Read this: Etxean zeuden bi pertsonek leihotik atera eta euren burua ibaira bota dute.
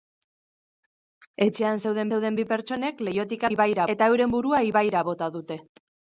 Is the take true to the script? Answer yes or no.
no